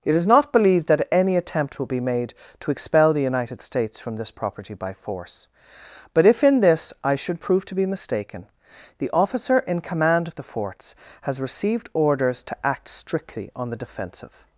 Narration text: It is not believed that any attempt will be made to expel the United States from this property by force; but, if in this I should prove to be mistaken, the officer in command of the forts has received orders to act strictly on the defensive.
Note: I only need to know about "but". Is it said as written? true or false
true